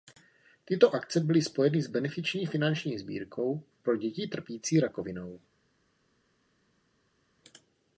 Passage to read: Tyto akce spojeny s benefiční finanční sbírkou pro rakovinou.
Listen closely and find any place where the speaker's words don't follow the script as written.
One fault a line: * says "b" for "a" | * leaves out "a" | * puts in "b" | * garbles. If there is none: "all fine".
* puts in "byly"
* puts in "děti trpící"